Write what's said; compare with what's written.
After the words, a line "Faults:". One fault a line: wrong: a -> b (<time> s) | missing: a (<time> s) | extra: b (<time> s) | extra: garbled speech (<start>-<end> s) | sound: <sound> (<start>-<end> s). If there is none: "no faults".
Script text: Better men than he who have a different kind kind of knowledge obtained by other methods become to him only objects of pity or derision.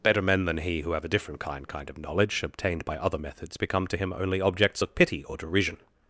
Better men than he who have a different kind kind of knowledge obtained by other methods become to him only objects of pity or derision.
Faults:
no faults